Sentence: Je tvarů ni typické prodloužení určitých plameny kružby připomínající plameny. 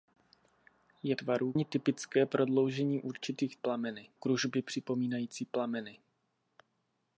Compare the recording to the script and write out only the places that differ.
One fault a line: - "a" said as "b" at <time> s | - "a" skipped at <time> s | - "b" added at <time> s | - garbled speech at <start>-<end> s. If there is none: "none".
none